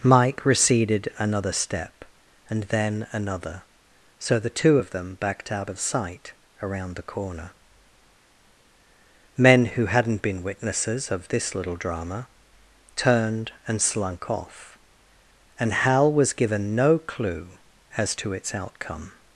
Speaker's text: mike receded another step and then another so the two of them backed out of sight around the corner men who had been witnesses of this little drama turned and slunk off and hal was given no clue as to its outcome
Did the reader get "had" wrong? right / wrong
wrong